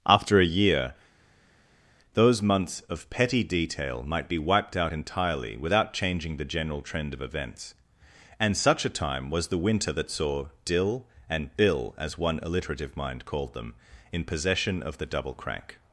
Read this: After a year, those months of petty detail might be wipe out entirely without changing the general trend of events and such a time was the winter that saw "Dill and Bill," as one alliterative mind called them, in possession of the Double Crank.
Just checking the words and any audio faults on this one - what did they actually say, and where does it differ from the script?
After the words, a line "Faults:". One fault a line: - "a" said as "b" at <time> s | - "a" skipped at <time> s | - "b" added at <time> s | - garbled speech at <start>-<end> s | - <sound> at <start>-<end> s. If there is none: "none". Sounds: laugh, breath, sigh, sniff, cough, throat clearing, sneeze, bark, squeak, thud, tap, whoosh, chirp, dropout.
After a year, those months of petty detail might be wiped out entirely without changing the general trend of events and such a time was the winter that saw "Dill and Bill," as one alliterative mind called them, in possession of the Double Crank.
Faults:
- "wipe" said as "wiped" at 4.4 s